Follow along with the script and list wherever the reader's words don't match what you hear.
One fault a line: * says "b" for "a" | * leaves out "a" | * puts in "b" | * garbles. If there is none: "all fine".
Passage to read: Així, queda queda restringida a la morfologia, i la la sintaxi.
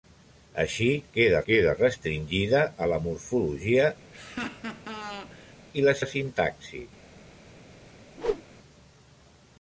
all fine